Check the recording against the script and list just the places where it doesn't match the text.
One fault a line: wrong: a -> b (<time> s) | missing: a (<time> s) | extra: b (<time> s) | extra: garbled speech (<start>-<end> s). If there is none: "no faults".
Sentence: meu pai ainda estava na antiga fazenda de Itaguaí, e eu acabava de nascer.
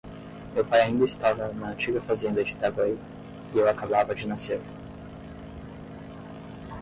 no faults